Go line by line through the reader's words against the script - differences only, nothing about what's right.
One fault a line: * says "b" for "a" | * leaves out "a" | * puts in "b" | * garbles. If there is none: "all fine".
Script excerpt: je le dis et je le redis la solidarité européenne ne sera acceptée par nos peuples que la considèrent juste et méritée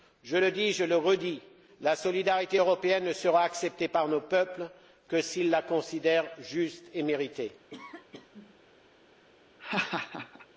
* puts in "s'ils"